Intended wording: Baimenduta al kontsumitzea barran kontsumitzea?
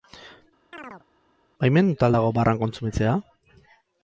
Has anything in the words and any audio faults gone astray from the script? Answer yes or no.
yes